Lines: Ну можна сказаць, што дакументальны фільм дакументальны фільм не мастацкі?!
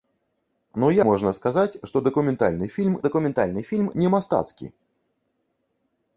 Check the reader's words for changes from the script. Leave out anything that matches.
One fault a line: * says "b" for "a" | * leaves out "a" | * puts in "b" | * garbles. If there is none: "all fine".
all fine